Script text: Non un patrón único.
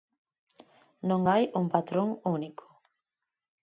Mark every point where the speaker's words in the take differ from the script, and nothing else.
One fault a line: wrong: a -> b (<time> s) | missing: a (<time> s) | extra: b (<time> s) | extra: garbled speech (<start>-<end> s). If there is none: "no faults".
extra: hai (1.3 s)